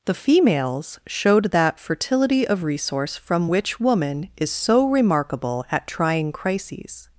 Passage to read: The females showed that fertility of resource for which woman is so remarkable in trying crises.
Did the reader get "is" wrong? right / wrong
right